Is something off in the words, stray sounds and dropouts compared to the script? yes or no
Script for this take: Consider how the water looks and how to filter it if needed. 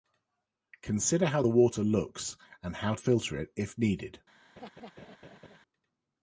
yes